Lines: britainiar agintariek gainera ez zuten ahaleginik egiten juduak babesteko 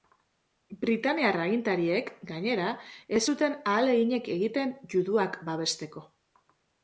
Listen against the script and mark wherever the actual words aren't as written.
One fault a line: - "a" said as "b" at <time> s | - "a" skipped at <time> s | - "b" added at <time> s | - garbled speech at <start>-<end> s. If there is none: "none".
none